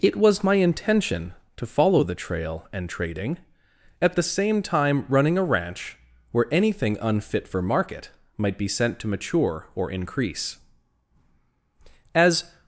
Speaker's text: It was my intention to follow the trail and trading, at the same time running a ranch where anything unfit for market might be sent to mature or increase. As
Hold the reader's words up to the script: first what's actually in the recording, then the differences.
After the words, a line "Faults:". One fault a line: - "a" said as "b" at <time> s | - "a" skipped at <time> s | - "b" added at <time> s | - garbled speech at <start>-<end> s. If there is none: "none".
It was my intention to follow the trail and trading, at the same time running a ranch where anything unfit for market might be sent to mature or increase. As
Faults:
none